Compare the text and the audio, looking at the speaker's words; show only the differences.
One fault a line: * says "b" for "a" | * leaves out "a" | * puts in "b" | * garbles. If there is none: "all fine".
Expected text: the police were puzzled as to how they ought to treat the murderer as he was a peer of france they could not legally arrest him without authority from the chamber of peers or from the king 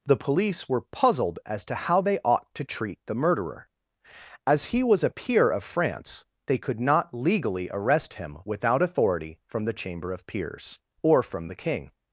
all fine